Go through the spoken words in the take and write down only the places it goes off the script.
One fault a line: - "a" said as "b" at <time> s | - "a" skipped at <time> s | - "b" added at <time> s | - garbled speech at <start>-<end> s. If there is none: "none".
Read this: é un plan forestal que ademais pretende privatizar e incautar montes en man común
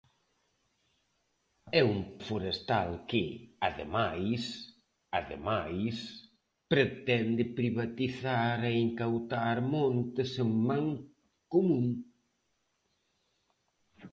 - "plan" skipped at 2.0 s
- "ademais" added at 5.2 s